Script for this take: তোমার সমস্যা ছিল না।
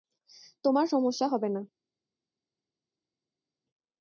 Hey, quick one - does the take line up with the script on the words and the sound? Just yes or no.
no